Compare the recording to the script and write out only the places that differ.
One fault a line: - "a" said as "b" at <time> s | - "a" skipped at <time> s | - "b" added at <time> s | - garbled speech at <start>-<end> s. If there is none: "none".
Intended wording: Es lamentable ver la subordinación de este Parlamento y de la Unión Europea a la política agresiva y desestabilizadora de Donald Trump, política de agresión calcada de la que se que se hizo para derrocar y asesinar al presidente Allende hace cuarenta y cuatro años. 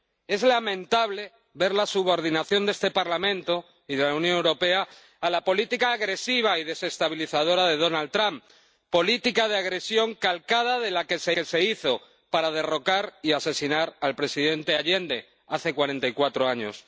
none